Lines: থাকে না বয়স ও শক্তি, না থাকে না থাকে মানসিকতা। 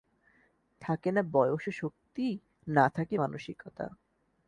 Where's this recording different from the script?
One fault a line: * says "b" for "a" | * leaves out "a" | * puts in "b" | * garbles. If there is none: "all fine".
* leaves out "না থাকে"